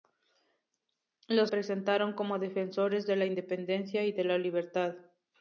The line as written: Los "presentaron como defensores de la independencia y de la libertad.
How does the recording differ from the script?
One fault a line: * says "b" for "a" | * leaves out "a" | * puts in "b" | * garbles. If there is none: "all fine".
all fine